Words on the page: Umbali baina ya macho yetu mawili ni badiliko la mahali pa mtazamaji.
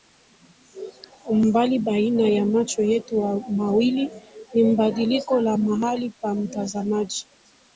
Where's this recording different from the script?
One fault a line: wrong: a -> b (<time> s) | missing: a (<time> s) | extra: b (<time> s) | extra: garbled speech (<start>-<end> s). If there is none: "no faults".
no faults